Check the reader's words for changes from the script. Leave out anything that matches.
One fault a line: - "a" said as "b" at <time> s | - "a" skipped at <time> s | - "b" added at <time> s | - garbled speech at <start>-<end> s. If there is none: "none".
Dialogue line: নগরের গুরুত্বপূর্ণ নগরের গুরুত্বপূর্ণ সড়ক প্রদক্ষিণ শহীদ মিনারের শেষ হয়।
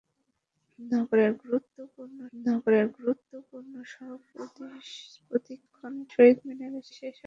none